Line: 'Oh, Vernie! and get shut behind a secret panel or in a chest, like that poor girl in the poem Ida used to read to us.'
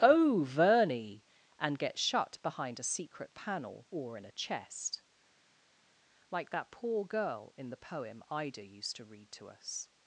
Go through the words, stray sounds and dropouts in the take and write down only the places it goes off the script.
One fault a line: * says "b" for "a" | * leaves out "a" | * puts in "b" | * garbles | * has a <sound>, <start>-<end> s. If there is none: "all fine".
all fine